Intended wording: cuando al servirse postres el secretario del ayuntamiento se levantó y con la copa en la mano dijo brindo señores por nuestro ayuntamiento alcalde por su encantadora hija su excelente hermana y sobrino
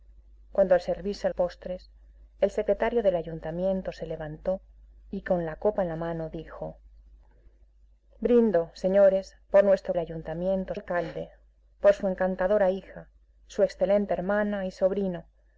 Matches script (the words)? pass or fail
pass